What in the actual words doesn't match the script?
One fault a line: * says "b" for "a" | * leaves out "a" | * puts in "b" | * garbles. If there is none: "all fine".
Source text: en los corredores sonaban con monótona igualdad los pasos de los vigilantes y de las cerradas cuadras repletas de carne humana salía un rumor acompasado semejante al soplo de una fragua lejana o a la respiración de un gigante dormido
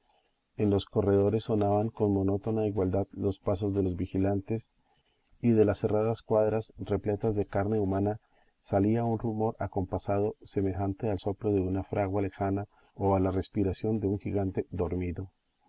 all fine